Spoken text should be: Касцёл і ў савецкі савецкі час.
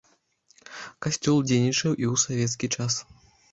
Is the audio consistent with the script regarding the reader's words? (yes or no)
no